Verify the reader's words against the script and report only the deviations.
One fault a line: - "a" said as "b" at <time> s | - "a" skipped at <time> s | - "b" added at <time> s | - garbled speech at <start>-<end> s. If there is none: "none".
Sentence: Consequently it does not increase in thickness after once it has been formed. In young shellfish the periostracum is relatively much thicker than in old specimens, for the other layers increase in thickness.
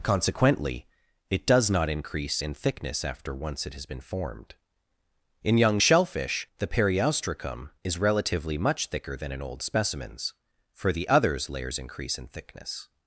- "other" said as "others" at 11.1 s